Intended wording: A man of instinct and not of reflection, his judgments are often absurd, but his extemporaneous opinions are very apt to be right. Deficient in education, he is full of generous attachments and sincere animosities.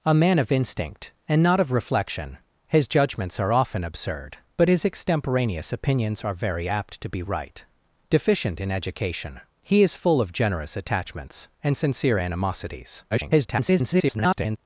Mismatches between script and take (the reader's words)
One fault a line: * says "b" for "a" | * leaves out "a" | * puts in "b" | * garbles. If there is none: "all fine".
* garbles